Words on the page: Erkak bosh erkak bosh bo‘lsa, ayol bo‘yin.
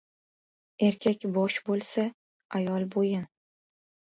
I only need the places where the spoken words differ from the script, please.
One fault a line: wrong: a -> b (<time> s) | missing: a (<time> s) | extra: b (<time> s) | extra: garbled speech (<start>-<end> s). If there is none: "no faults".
missing: erkak bosh (1.6 s)